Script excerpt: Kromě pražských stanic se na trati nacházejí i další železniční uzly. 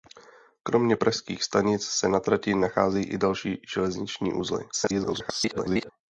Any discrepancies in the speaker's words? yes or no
yes